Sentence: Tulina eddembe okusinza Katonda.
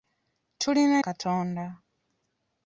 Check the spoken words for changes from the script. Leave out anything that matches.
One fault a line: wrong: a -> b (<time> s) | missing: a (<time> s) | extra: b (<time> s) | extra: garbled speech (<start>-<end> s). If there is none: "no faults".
missing: eddembe okusinza (0.9 s)